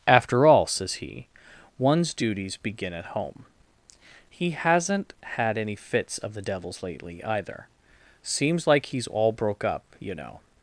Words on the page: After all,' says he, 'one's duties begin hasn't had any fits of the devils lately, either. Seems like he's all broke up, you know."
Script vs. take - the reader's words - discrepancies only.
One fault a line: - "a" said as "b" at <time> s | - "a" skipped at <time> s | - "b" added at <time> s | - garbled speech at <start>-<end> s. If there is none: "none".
- "at home He" added at 2.9 s